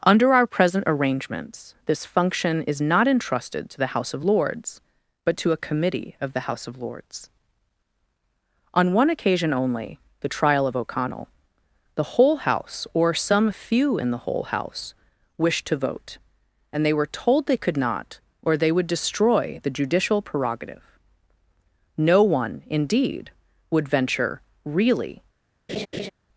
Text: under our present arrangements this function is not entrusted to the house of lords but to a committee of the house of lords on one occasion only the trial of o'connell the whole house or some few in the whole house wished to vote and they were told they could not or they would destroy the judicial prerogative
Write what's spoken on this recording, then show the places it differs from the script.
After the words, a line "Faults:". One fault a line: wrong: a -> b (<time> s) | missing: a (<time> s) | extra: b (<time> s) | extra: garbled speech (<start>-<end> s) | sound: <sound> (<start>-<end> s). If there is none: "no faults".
under our present arrangements this function is not entrusted to the house of lords but to a committee of the house of lords on one occasion only the trial of o'connell the whole house or some few in the whole house wished to vote and they were told they could not or they would destroy the judicial prerogative no one indeed would venture really
Faults:
extra: no one indeed would venture really (22.0 s)
sound: laugh (25.7-26.1 s)